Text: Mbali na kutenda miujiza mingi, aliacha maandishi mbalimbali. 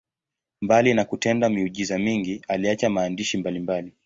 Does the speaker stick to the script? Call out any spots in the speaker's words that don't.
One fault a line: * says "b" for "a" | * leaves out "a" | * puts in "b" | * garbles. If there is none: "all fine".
all fine